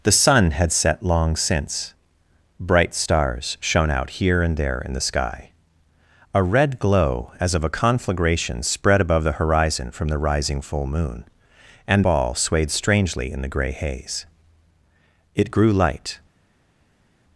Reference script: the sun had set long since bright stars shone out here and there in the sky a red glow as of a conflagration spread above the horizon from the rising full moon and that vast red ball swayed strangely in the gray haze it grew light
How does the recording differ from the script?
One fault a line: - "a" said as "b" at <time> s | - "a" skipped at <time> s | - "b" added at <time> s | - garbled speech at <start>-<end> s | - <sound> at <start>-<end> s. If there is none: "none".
- "that vast red" skipped at 12.0 s